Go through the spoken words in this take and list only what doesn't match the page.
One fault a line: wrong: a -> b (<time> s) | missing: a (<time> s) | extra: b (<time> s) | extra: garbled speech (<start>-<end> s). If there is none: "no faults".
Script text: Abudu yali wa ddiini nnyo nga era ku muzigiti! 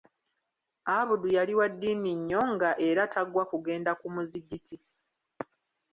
extra: tagwa kugenda (3.1 s)